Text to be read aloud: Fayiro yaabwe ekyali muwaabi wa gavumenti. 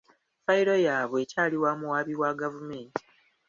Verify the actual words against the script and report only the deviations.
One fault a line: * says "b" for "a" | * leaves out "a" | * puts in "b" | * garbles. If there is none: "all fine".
* puts in "wa"